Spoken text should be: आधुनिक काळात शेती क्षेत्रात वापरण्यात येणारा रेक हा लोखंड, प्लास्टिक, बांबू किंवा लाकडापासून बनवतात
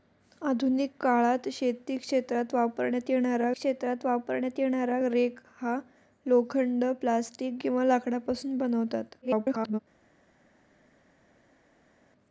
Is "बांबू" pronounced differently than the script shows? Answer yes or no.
yes